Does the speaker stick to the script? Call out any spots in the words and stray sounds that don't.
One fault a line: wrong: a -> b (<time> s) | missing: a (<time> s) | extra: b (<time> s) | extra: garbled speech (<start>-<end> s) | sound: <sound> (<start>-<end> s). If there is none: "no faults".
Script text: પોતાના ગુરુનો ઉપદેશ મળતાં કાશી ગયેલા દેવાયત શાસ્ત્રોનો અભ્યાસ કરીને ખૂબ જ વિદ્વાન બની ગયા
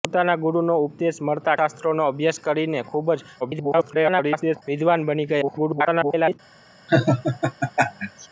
missing: કાશી ગયેલા દેવાયત (1.6 s)
extra: garbled speech (3.4-4.6 s)
extra: garbled speech (5.4-6.4 s)
sound: laugh (6.9-8.3 s)